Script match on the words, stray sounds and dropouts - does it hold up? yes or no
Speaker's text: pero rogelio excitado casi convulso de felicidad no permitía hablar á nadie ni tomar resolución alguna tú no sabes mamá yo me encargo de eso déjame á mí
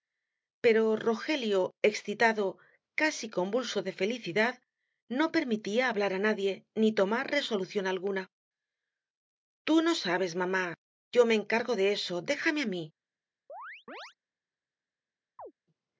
no